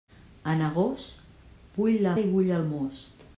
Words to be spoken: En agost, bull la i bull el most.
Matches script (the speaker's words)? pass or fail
pass